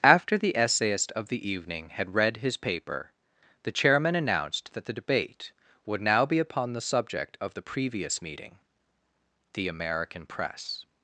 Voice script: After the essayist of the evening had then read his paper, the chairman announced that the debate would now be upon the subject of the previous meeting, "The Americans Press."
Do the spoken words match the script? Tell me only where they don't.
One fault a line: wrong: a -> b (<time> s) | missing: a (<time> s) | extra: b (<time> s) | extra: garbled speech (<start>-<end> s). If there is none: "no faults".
missing: then (2.1 s)
wrong: Americans -> American (9.7 s)